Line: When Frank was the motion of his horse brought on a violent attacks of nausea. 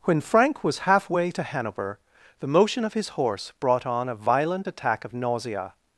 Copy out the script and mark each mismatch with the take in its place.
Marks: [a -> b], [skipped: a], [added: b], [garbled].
When Frank was [added: halfway to Hanover] the motion of his horse brought on a violent [attacks -> attack] of nausea.